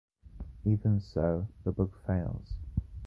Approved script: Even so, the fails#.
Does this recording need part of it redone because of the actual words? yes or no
yes